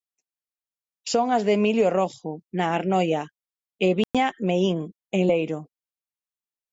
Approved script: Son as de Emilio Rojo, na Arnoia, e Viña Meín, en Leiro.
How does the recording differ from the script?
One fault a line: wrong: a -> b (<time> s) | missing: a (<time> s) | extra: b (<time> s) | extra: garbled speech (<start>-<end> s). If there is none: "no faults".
no faults